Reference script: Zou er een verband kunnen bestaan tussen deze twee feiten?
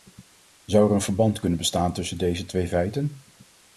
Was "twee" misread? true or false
false